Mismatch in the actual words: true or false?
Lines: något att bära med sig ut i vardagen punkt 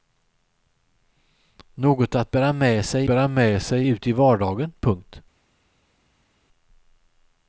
true